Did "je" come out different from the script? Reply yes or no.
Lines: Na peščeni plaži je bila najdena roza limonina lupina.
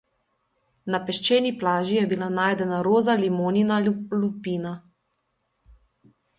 no